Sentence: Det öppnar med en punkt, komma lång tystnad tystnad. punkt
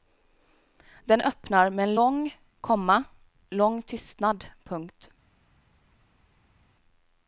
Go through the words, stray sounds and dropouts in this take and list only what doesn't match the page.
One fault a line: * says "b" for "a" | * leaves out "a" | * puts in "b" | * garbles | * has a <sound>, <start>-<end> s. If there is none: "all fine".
* says "Den" for "Det"
* says "lång" for "punkt"
* leaves out "tystnad"